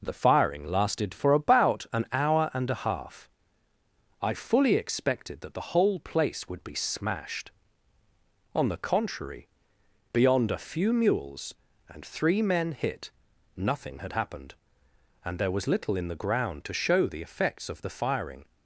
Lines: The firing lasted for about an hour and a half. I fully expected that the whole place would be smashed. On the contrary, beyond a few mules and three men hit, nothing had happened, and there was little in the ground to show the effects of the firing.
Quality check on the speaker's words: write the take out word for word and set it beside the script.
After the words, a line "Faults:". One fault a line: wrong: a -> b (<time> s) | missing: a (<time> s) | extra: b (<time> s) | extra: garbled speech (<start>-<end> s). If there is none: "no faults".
The firing lasted for about an hour and a half. I fully expected that the whole place would be smashed. On the contrary, beyond a few mules and three men hit, nothing had happened, and there was little in the ground to show the effects of the firing.
Faults:
no faults